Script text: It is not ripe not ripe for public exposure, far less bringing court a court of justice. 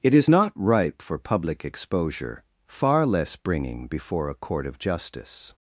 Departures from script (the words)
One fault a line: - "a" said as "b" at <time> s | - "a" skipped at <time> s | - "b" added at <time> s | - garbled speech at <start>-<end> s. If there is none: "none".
- "not ripe" skipped at 1.0 s
- "court" said as "before" at 3.9 s